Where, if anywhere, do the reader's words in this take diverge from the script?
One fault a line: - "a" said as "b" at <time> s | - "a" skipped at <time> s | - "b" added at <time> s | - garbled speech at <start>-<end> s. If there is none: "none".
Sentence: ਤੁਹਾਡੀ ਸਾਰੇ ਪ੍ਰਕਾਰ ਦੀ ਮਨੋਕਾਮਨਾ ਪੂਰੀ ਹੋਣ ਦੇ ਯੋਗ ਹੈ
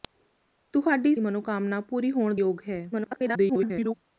- "ਸਾਰੇ ਪ੍ਰਕਾਰ ਦੀ" skipped at 1.1 s
- "ਦੇ" skipped at 2.3 s
- garbled speech at 2.9-3.9 s